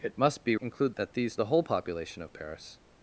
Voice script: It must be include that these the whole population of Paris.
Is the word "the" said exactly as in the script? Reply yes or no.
yes